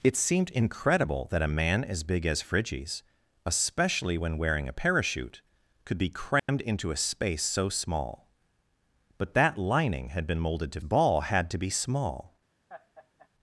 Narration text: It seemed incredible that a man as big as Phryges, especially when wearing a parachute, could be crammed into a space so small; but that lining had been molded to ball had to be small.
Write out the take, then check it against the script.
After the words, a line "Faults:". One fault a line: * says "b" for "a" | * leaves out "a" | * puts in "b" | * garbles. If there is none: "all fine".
It seemed incredible that a man as big as Phryges, especially when wearing a parachute, could be crammed into a space so small; but that lining had been molded to ball had to be small.
Faults:
all fine